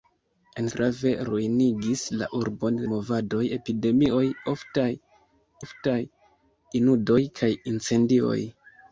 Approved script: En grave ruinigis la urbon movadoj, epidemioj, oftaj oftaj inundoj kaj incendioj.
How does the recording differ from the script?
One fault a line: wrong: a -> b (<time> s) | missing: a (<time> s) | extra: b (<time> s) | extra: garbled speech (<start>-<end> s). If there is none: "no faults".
no faults